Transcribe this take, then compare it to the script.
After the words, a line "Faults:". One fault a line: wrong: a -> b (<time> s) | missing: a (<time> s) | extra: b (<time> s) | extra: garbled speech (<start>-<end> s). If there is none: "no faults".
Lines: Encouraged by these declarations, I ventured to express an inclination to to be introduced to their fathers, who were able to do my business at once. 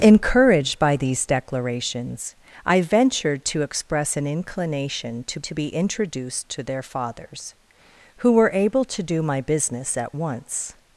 Encouraged by these declarations, I ventured to express an inclination to to be introduced to their fathers, who were able to do my business at once.
Faults:
no faults